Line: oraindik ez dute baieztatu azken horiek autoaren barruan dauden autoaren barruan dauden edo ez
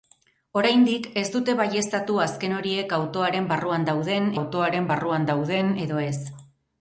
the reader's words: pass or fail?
pass